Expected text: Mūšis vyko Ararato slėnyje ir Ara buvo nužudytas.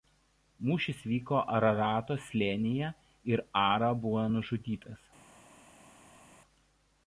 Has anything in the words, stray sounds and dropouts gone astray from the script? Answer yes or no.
no